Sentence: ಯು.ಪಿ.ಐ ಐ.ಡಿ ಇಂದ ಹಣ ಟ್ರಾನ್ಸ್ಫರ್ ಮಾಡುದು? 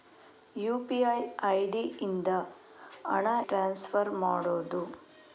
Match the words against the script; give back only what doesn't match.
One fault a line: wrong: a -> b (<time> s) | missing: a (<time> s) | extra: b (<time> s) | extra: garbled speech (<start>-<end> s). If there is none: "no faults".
no faults